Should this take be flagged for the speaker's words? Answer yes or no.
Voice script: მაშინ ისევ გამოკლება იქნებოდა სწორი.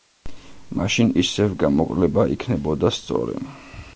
no